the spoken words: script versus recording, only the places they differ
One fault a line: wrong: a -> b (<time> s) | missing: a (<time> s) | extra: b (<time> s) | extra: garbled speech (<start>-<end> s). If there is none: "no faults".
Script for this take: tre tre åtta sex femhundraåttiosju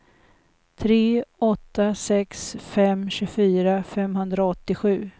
missing: tre (1.2 s)
extra: fem tjugofyra (2.6 s)